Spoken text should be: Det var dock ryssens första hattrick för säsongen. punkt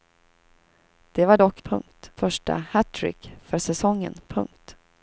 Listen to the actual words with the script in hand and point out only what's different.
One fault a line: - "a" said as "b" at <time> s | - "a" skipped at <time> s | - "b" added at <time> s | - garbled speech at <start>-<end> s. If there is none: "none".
- "ryssens" said as "punkt" at 1.6 s